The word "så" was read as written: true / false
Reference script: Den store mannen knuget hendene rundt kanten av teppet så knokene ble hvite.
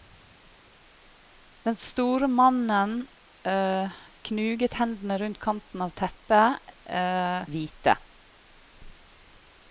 false